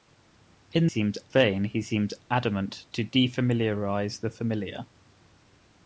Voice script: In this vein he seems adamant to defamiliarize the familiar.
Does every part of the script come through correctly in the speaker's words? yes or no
no